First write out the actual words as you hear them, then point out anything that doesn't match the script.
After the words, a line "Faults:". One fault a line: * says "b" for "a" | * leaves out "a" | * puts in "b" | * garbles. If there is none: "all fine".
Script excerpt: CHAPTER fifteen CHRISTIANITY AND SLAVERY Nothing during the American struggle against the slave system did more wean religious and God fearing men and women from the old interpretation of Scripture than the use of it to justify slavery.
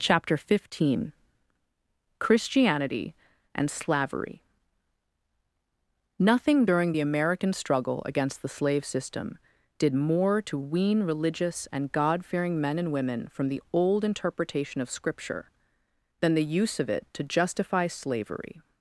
CHAPTER fifteen CHRISTIANITY AND SLAVERY Nothing during the American struggle against the slave system did more to wean religious and God fearing men and women from the old interpretation of Scripture than the use of it to justify slavery.
Faults:
* puts in "to"